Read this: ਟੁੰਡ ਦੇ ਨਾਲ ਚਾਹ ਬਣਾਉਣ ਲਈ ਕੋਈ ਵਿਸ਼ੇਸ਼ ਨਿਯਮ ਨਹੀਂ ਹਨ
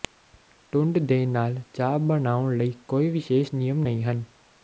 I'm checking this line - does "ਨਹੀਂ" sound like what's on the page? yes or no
yes